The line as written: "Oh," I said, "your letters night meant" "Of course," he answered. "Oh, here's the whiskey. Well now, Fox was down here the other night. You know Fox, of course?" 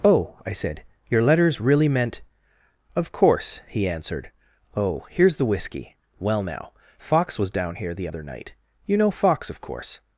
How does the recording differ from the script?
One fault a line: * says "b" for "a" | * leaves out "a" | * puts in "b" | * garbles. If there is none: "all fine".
* says "really" for "night"